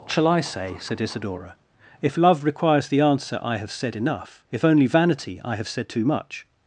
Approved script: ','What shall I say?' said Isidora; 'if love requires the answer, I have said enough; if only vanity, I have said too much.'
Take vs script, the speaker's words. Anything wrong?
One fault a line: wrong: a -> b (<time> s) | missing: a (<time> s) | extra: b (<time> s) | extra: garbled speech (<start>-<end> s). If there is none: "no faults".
missing: What (0.1 s)